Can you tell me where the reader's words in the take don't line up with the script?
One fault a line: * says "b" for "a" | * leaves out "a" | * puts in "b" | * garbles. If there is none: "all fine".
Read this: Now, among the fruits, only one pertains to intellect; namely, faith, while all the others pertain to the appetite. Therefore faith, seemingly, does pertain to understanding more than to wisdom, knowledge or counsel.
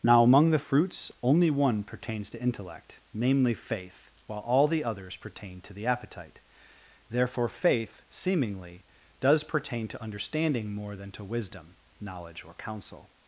all fine